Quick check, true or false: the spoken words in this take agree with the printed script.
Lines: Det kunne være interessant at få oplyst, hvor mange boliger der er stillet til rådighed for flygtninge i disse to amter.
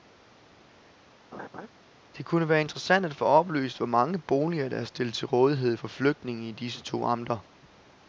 true